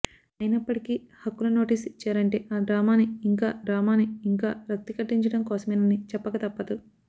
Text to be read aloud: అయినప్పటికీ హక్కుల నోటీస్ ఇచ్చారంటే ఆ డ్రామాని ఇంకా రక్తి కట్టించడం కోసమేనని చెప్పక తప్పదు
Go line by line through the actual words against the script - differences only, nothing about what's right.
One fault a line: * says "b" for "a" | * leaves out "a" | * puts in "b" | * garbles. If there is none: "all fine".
* puts in "డ్రామాని ఇంకా"